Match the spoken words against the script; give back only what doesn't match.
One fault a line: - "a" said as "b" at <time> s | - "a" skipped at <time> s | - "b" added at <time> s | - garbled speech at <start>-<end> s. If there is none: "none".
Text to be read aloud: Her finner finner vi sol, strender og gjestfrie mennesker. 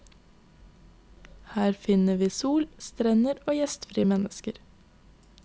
- "finner" skipped at 2.2 s